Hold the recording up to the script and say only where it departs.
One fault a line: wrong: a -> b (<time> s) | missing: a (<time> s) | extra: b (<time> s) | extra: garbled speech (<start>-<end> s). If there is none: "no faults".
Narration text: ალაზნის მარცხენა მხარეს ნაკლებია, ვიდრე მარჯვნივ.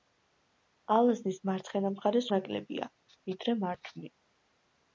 no faults